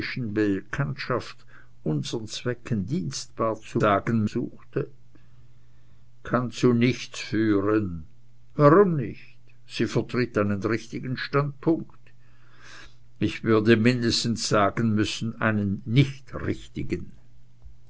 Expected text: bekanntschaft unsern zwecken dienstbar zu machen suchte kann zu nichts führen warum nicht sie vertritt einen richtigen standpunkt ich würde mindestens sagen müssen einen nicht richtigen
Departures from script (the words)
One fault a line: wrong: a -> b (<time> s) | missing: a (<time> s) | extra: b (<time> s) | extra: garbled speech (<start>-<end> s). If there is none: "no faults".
wrong: machen -> sagen (3.8 s)